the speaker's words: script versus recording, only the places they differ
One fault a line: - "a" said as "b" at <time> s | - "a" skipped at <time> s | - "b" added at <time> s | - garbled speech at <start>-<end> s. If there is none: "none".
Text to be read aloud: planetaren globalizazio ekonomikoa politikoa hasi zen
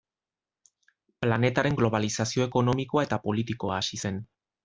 - "eta" added at 3.1 s